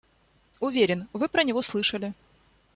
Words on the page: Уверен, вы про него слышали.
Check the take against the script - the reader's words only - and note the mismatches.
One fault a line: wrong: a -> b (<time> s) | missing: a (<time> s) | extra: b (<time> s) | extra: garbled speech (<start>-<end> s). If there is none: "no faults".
no faults